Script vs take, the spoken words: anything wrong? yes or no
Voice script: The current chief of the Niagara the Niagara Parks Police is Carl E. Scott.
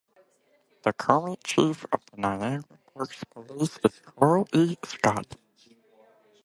yes